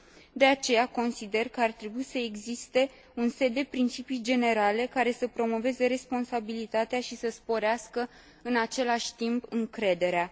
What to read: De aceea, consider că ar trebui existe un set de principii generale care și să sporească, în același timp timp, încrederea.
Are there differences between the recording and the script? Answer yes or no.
yes